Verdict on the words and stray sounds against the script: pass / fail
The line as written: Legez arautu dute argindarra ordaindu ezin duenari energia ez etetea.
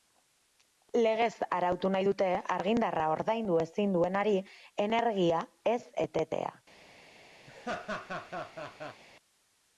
fail